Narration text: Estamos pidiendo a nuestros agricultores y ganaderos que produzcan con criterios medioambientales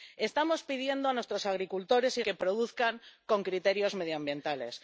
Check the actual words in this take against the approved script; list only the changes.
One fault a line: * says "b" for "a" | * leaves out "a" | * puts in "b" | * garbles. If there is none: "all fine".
* leaves out "ganaderos"